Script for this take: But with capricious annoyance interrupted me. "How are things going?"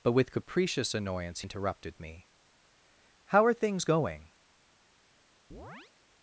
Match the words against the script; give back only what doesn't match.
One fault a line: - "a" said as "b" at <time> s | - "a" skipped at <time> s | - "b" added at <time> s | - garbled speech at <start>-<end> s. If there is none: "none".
none